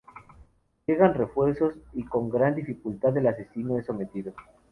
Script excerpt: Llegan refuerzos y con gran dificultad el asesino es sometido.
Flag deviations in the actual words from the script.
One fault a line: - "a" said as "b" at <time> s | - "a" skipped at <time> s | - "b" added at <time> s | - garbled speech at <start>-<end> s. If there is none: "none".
none